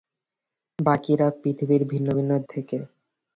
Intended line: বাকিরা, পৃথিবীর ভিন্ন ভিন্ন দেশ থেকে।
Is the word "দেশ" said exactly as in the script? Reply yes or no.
no